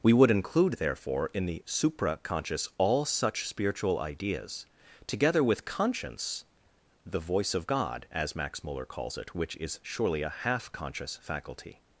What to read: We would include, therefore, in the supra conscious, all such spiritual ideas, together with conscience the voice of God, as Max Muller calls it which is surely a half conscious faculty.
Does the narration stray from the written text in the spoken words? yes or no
no